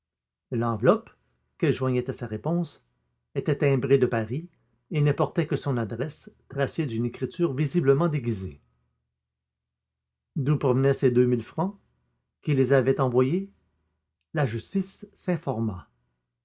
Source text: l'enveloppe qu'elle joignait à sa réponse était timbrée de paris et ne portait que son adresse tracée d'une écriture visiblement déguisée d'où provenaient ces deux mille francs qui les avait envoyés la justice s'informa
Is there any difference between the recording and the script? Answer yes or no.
no